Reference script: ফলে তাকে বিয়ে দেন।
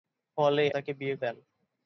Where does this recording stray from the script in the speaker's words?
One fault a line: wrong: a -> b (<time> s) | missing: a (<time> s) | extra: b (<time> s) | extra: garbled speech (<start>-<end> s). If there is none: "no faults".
no faults